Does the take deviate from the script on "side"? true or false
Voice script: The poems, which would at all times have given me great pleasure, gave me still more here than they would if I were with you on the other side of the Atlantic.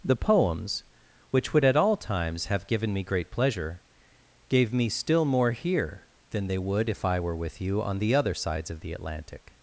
true